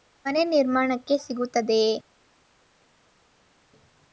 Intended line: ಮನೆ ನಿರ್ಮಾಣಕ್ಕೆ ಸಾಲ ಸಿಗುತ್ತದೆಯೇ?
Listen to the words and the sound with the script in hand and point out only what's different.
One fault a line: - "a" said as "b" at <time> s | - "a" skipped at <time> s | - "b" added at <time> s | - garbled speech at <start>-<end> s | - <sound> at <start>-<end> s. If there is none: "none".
- "ಸಾಲ" skipped at 1.2 s